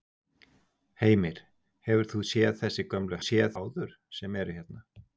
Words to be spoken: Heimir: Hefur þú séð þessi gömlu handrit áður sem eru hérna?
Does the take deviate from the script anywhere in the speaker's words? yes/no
yes